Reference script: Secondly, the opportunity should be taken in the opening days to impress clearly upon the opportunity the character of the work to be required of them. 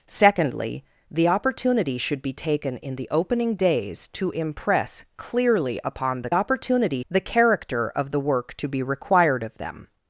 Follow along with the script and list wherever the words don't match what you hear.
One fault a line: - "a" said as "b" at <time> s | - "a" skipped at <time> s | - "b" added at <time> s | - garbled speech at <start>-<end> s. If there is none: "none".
none